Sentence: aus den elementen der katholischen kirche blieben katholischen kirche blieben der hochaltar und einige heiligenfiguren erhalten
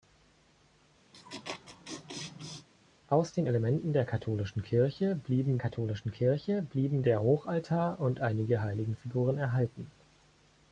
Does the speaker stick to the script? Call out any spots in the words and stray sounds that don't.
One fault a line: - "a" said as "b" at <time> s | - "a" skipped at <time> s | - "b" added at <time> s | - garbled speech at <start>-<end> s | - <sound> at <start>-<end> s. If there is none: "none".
- laugh at 1.1-2.7 s